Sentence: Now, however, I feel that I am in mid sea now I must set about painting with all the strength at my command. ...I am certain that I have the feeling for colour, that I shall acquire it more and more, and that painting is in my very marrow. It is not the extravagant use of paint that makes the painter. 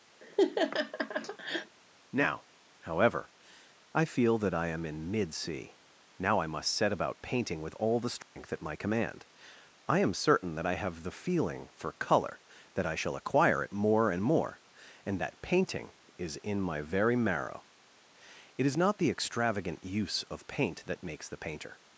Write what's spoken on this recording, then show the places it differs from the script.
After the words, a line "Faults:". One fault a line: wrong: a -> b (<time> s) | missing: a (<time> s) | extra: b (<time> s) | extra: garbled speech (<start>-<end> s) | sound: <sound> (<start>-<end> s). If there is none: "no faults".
Now, however, I feel that I am in mid sea now I must set about painting with all the strength at my command. ...I am certain that I have the feeling for colour, that I shall acquire it more and more, and that painting is in my very marrow. It is not the extravagant use of paint that makes the painter.
Faults:
sound: laugh (0.2-1.8 s)
sound: dropout (8.2-8.4 s)